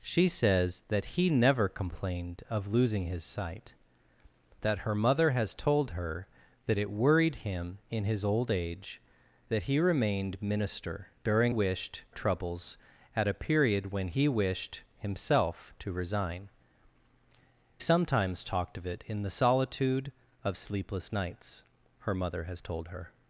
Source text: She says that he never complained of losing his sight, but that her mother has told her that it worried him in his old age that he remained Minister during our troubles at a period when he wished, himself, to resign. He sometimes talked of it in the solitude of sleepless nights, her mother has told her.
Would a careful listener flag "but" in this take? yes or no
yes